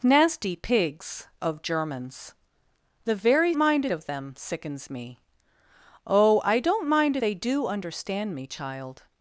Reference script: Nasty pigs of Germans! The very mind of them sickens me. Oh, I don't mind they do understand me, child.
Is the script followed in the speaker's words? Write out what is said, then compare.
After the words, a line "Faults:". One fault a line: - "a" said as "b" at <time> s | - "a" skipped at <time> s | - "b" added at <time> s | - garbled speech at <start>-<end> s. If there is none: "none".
Nasty pigs of Germans! The very mind of them sickens me. Oh, I don't mind they do understand me, child.
Faults:
none